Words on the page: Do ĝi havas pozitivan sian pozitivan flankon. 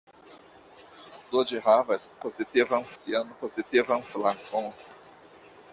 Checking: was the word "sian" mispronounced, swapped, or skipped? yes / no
no